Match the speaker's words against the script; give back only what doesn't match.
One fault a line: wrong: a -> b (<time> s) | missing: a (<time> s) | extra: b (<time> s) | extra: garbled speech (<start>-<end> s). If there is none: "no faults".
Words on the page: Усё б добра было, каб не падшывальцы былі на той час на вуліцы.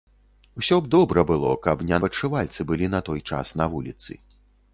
no faults